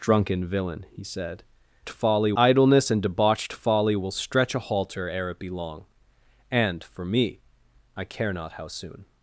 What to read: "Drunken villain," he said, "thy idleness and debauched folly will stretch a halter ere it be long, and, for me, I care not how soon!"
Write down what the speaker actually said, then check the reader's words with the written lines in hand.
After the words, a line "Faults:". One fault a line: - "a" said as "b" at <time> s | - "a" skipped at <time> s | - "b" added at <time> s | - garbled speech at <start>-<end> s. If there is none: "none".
"Drunken villain," he said, "folly idleness and debauched folly will stretch a halter ere it be long, and, for me, I care not how soon!"
Faults:
- "thy" said as "folly" at 1.9 s